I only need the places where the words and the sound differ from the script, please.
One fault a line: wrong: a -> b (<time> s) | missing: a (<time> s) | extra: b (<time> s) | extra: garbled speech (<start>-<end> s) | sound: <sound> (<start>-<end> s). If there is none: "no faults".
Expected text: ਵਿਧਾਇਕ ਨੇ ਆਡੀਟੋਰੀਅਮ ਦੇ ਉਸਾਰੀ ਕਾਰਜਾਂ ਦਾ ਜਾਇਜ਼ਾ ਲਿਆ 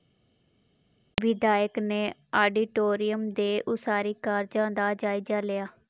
no faults